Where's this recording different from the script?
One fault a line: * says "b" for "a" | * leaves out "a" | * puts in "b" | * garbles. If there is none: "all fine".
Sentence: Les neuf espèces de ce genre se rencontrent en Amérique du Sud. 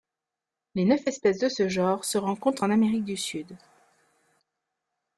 all fine